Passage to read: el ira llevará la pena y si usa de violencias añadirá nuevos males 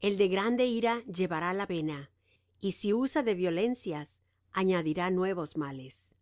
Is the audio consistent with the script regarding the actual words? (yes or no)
no